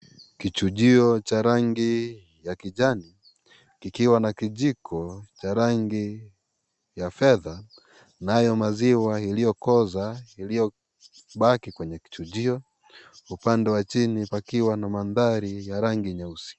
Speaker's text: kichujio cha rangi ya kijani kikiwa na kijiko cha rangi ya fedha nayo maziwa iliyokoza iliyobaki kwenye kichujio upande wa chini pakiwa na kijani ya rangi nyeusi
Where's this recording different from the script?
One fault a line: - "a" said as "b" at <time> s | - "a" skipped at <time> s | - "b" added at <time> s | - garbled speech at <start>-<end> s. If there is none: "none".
- "kijani" said as "mandhari" at 14.9 s